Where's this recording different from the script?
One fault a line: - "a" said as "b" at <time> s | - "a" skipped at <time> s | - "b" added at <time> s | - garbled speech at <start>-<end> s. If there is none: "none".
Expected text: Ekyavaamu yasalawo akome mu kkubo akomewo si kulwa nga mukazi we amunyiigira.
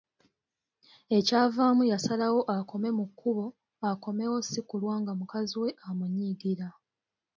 none